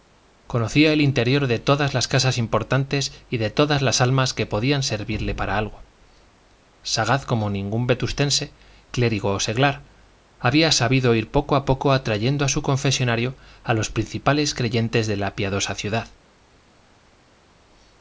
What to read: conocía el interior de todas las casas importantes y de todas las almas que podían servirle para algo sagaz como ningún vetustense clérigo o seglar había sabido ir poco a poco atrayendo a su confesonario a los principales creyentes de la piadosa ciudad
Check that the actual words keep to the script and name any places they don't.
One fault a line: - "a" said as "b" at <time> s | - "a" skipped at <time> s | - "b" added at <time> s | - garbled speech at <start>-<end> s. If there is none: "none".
none